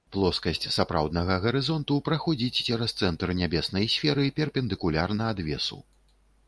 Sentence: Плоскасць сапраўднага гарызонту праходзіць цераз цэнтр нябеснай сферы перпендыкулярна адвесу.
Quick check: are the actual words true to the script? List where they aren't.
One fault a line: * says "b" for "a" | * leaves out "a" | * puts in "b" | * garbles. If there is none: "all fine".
all fine